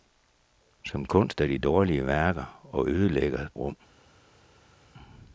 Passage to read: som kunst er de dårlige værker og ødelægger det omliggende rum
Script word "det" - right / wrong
wrong